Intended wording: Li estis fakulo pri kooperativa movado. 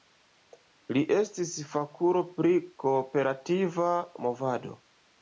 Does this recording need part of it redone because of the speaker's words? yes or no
no